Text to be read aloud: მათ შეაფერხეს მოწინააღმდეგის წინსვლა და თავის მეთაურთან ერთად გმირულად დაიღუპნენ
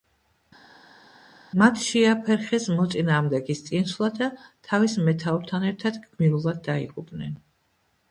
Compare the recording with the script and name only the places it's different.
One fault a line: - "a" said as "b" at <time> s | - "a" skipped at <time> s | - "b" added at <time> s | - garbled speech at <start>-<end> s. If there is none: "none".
none